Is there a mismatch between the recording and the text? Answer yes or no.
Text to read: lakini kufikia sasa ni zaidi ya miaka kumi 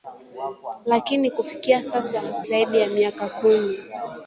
yes